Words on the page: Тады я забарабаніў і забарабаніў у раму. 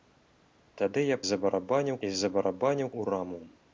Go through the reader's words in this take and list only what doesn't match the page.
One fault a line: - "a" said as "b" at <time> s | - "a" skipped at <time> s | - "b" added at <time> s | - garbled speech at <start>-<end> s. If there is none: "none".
none